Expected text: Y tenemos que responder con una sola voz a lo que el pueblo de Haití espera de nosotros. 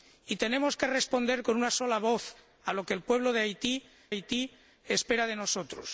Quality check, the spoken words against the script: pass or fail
fail